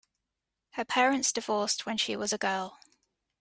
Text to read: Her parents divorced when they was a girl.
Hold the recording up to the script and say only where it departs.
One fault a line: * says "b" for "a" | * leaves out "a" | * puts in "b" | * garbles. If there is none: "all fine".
* says "she" for "they"